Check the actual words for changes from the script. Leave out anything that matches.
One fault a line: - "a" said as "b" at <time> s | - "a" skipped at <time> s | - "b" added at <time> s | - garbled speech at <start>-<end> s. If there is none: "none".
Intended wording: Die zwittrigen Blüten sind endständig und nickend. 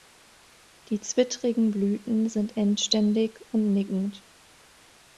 none